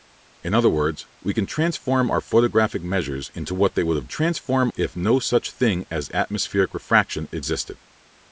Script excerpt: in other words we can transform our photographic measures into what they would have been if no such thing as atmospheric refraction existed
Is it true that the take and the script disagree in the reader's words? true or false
true